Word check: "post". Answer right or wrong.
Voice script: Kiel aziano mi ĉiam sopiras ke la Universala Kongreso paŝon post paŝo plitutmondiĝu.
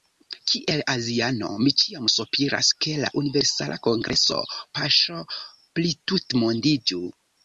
wrong